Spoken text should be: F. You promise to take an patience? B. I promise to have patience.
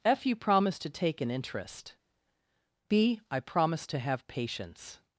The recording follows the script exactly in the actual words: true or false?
false